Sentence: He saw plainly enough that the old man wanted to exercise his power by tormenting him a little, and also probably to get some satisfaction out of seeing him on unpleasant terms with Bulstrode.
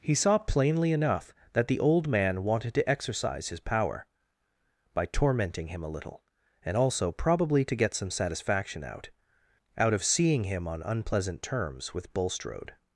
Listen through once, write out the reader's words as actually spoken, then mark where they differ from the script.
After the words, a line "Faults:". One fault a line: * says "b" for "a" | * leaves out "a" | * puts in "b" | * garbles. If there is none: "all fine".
He saw plainly enough that the old man wanted to exercise his power by tormenting him a little, and also probably to get some satisfaction out out of seeing him on unpleasant terms with Bulstrode.
Faults:
* puts in "out"